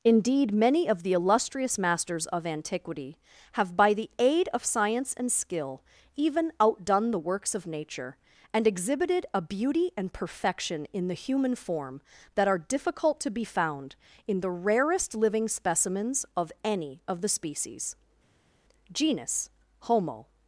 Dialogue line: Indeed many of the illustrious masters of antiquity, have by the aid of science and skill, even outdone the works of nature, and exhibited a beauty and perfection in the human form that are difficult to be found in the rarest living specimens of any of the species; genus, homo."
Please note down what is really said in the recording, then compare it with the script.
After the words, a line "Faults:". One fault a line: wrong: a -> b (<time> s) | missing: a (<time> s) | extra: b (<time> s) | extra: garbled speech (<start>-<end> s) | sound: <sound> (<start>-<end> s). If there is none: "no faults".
Indeed many of the illustrious masters of antiquity, have by the aid of science and skill, even outdone the works of nature, and exhibited a beauty and perfection in the human form that are difficult to be found in the rarest living specimens of any of the species; genus, homo."
Faults:
no faults